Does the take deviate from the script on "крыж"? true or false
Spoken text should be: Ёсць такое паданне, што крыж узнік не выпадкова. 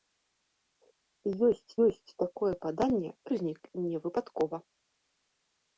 true